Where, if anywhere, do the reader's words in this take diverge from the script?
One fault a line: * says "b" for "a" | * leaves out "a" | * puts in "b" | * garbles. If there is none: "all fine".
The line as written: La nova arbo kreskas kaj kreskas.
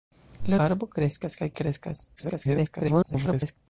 * leaves out "nova"
* garbles